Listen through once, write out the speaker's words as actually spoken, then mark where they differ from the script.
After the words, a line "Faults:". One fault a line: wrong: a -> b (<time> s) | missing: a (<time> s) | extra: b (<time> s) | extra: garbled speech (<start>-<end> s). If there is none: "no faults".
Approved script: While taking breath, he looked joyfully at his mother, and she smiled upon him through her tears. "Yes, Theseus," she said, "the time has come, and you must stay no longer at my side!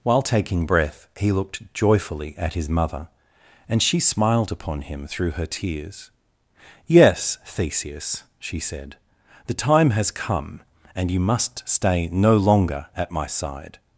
While taking breath, he looked joyfully at his mother, and she smiled upon him through her tears. "Yes, Theseus," she said, "the time has come, and you must stay no longer at my side!
Faults:
no faults